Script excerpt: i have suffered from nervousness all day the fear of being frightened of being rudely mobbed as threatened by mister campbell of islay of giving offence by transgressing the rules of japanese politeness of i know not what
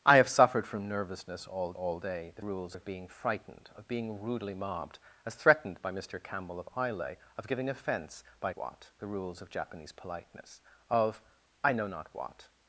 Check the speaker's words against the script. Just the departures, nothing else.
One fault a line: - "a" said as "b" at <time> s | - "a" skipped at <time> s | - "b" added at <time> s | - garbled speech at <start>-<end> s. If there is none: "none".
- "all" added at 1.7 s
- "fear" said as "rules" at 2.4 s
- "transgressing" said as "what" at 8.5 s